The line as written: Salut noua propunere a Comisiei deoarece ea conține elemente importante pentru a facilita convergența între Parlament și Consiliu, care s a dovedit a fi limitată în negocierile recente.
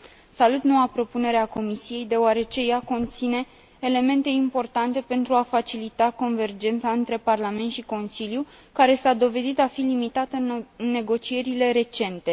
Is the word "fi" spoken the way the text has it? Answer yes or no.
yes